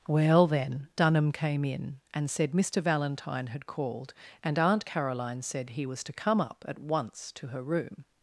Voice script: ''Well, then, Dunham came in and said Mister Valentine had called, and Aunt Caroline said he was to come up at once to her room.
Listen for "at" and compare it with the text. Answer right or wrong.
right